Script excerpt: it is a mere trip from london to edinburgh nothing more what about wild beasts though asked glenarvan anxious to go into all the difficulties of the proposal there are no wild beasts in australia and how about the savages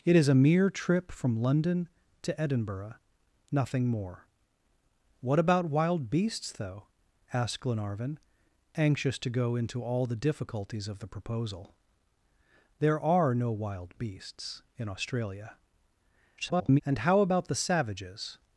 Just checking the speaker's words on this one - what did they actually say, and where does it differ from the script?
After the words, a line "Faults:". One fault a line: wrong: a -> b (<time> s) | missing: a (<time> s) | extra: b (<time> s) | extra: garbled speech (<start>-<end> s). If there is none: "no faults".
it is a mere trip from london to edinburgh nothing more what about wild beasts though asked glenarvan anxious to go into all the difficulties of the proposal there are no wild beasts in australia [garbled] and how about the savages
Faults:
extra: garbled speech (16.4-16.8 s)